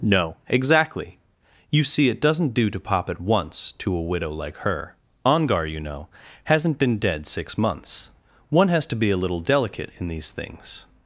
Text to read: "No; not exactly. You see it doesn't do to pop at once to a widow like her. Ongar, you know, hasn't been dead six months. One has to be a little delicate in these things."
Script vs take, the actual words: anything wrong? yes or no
yes